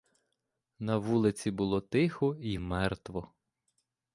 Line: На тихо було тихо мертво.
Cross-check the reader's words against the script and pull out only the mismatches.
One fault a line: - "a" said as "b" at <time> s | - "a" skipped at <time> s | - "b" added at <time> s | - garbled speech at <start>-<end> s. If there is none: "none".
- "тихо" said as "вулиці" at 1.0 s
- "й" added at 2.4 s